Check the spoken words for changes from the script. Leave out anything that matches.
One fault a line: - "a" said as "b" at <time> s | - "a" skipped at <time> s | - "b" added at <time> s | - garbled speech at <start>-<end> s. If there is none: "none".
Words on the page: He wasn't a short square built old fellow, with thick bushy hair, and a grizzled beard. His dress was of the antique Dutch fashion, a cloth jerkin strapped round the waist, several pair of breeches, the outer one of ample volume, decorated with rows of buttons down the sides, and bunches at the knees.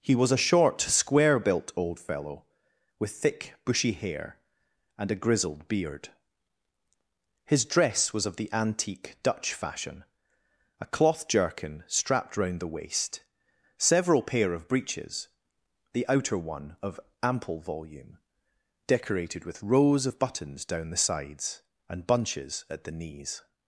- "wasn't" said as "was" at 0.1 s